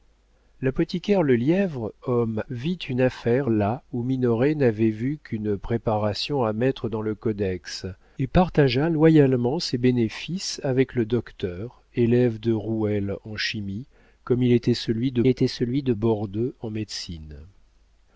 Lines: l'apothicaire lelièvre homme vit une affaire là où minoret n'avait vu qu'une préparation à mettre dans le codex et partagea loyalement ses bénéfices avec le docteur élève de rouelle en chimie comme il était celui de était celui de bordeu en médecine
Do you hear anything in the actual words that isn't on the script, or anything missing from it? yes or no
no